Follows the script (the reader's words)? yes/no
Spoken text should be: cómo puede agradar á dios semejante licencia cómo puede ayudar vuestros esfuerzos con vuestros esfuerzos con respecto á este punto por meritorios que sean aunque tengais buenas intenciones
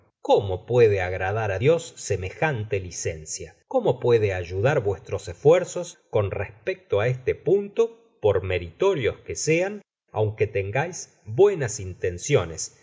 no